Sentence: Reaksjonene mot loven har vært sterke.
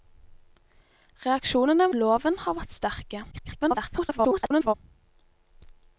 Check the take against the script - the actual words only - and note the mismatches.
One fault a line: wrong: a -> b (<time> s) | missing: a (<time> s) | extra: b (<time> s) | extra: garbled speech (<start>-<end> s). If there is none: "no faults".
missing: mot (1.9 s)
extra: garbled speech (3.3-4.7 s)